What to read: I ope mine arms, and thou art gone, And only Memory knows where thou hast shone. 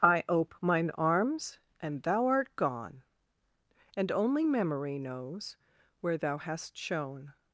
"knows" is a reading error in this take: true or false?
false